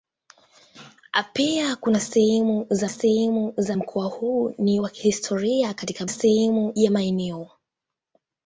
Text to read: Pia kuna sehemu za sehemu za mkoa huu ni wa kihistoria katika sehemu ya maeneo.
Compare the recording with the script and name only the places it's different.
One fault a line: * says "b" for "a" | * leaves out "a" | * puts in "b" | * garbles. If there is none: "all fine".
all fine